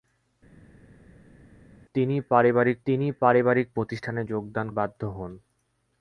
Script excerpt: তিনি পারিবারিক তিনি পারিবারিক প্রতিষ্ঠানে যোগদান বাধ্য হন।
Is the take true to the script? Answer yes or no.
yes